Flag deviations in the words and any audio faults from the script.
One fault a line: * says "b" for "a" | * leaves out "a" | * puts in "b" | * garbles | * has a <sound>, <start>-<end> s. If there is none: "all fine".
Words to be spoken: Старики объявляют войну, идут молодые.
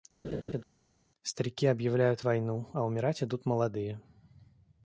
* has a laugh, 0.2-0.6 s
* puts in "а умирать"